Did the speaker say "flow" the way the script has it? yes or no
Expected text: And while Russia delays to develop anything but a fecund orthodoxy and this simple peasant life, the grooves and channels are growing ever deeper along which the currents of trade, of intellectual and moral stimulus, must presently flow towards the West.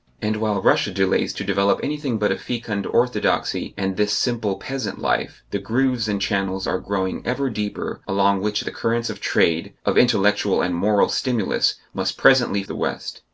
no